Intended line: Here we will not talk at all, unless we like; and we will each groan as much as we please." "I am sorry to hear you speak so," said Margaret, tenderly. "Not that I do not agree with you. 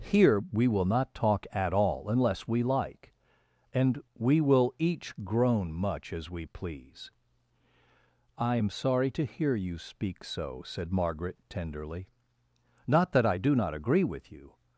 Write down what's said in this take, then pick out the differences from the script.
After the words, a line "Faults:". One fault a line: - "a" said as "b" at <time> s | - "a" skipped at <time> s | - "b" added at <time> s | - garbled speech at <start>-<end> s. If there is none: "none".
Here we will not talk at all, unless we like; and we will each groan much as we please." "I am sorry to hear you speak so," said Margaret, tenderly. "Not that I do not agree with you.
Faults:
- "as" skipped at 5.7 s